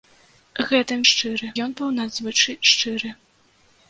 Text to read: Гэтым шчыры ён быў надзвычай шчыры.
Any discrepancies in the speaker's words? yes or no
no